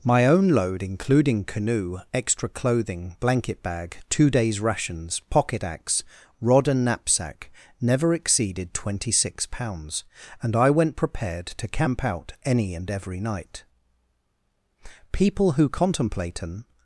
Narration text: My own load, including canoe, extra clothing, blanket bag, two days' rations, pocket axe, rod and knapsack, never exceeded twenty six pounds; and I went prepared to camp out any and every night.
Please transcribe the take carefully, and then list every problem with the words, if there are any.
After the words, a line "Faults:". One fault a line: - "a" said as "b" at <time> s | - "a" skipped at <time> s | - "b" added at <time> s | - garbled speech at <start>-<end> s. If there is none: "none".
My own load, including canoe, extra clothing, blanket bag, two days' rations, pocket axe, rod and knapsack, never exceeded twenty six pounds; and I went prepared to camp out any and every night. People who contemplate an
Faults:
- "People who contemplate an" added at 15.1 s